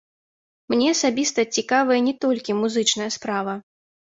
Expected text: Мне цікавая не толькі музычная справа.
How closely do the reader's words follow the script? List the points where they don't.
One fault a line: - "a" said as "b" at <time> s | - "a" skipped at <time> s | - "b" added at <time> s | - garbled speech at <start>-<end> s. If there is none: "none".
- "асабіста" added at 0.9 s